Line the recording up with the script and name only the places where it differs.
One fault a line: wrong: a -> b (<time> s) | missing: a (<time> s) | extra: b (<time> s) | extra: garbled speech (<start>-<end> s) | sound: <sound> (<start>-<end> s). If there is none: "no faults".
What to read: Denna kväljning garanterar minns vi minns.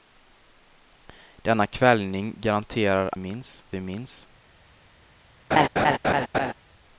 sound: laugh (5.5-6.5 s)